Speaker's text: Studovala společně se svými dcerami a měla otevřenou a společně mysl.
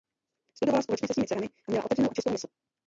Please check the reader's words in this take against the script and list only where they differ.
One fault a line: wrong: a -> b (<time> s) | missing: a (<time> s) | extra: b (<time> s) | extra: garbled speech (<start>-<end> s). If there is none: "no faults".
wrong: společně -> čistou (2.1 s)